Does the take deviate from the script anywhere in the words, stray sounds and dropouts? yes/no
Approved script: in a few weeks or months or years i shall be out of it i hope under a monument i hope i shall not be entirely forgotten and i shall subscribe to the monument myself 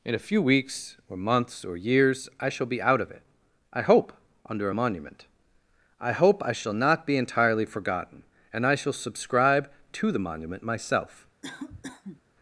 yes